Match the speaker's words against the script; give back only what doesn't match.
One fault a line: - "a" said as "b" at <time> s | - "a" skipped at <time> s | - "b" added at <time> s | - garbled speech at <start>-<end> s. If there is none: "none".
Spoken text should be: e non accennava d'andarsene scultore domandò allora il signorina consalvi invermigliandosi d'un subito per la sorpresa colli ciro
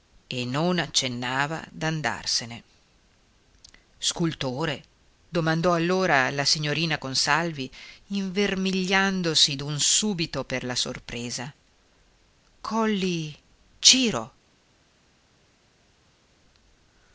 - "il" said as "la" at 6.3 s